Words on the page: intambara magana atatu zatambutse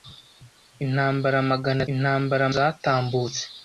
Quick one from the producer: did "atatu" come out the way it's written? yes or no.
no